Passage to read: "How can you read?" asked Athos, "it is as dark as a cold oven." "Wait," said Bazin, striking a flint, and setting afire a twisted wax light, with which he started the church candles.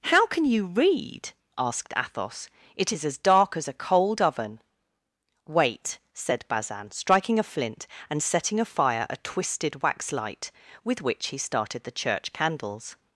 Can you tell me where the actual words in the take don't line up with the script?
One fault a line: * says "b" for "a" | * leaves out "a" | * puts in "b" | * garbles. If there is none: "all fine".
all fine